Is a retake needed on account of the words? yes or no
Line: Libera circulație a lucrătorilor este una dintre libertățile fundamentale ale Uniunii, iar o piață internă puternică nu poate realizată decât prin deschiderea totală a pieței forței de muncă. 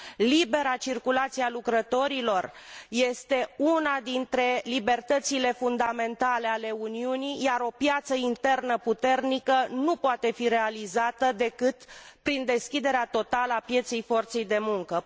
yes